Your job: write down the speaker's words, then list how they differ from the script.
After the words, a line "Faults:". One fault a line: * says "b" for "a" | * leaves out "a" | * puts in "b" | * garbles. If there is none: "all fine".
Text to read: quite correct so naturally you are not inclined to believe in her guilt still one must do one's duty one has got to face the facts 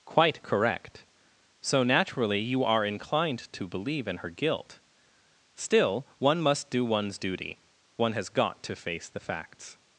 quite correct so naturally you are inclined to believe in her guilt still one must do one's duty one has got to face the facts
Faults:
* leaves out "not"